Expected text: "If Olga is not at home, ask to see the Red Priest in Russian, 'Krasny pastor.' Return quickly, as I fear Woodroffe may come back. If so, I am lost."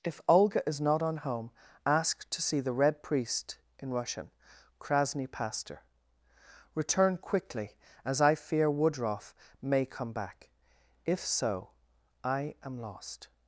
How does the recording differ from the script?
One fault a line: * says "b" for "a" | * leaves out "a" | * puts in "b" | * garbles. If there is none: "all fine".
* says "on" for "at"